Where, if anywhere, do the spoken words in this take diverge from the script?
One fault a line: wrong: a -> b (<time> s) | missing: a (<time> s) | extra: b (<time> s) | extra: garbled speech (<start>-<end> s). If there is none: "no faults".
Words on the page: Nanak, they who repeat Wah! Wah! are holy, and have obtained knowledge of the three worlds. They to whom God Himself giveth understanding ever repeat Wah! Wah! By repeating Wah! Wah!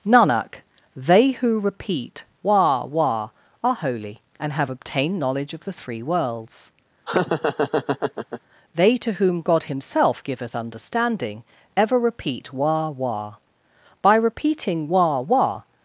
no faults